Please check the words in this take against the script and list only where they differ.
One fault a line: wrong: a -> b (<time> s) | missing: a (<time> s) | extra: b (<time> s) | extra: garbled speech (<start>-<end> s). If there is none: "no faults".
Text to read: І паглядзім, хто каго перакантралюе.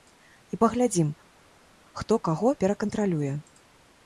no faults